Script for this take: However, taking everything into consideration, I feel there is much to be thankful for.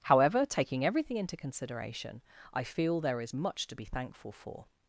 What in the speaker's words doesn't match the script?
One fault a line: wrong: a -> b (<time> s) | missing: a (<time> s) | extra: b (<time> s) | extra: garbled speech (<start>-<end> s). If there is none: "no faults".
no faults